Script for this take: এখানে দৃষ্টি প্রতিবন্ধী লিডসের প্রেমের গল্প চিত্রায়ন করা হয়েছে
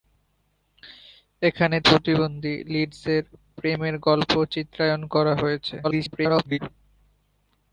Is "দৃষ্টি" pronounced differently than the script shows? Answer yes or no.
yes